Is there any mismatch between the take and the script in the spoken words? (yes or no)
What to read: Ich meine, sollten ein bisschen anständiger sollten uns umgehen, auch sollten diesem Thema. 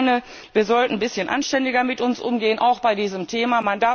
yes